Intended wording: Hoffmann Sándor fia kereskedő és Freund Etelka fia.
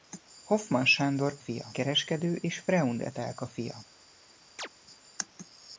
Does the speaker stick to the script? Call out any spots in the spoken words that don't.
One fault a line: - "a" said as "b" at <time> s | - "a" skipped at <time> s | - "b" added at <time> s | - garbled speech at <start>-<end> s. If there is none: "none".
none